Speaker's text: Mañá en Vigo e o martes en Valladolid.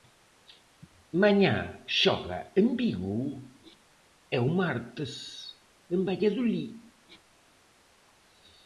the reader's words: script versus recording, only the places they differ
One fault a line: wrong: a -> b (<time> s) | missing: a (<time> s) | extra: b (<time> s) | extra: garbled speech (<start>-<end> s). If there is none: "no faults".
extra: xoga (2.0 s)